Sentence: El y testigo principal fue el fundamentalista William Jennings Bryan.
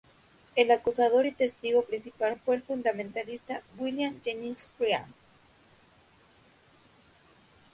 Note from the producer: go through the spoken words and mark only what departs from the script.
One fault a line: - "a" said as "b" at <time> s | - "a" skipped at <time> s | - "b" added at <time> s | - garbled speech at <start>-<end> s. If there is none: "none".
- "acusador" added at 0.7 s